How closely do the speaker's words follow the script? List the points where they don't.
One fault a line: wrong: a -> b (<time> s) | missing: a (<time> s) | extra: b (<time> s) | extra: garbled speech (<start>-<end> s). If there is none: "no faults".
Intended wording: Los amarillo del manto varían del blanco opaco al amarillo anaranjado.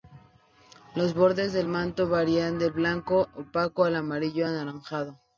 wrong: amarillo -> bordes (1.1 s)